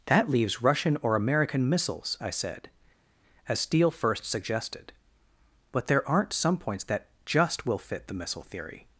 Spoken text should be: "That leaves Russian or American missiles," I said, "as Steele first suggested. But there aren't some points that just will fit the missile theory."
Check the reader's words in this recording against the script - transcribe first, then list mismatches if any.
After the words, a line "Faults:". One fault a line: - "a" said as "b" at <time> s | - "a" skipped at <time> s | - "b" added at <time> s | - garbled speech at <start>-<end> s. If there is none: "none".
"That leaves Russian or American missiles," I said, "as Steele first suggested. But there aren't some points that just will fit the missile theory."
Faults:
none